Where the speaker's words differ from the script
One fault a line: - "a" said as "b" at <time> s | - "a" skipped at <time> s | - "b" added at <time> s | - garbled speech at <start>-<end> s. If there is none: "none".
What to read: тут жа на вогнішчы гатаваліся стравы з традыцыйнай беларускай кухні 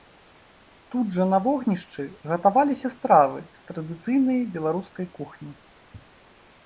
none